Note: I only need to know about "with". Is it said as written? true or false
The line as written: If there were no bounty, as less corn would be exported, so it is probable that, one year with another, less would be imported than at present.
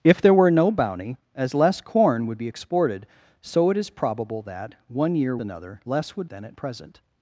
false